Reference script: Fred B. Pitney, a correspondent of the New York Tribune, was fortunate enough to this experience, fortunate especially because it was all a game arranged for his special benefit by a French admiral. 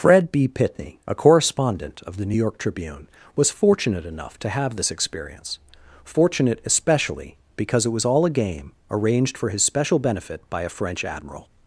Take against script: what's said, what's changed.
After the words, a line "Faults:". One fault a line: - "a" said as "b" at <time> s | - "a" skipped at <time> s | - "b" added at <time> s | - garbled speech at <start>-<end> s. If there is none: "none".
Fred B. Pitney, a correspondent of the New York Tribune, was fortunate enough to have this experience, fortunate especially because it was all a game arranged for his special benefit by a French admiral.
Faults:
- "have" added at 4.5 s